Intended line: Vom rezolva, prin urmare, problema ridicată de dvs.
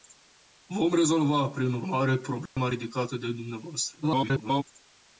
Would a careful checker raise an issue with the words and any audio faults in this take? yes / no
yes